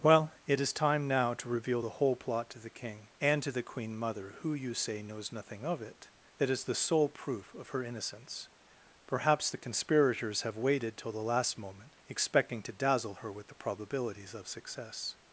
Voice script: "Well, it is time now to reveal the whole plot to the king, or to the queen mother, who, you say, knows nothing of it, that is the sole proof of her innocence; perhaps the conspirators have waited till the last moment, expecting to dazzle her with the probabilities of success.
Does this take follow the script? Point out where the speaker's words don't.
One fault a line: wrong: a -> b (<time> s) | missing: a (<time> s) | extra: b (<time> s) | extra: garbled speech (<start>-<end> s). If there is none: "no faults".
wrong: or -> and (3.2 s)